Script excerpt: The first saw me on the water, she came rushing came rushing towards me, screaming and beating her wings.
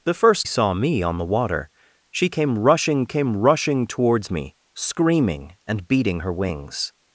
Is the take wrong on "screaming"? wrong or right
right